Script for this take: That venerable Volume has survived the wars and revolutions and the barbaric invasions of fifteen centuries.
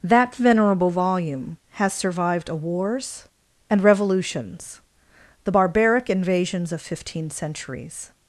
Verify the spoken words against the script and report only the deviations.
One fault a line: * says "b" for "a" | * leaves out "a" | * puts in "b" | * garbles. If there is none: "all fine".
* says "a" for "the"
* leaves out "and"